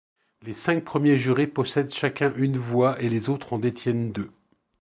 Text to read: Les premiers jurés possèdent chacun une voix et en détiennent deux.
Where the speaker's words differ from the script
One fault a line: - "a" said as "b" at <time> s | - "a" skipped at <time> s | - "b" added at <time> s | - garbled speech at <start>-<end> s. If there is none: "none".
- "cinq" added at 0.5 s
- "les autres" added at 3.1 s